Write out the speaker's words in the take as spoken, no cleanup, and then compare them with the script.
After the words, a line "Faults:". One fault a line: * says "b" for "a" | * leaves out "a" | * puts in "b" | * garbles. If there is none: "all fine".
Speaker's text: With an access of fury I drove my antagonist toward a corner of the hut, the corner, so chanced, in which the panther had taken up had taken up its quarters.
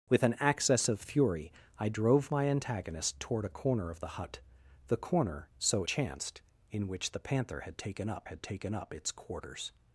With an access of fury I drove my antagonist toward a corner of the hut, the corner, so chanced, in which the panther had taken up had taken up its quarters.
Faults:
all fine